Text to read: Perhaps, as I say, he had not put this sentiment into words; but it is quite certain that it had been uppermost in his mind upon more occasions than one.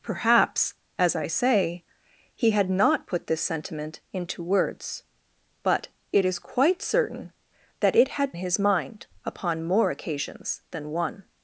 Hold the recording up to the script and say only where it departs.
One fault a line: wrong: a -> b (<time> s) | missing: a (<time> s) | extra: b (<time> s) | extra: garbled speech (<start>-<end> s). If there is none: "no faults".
missing: been uppermost in (8.3 s)